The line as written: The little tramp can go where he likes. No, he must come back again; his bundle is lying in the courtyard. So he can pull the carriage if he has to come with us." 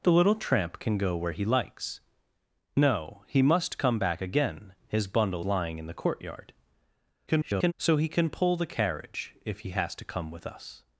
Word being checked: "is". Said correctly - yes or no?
no